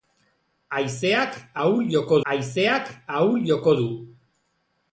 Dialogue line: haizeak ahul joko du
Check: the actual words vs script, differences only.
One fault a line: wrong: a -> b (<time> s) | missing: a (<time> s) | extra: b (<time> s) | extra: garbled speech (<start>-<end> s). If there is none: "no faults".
extra: haizeak ahul joko (2.3 s)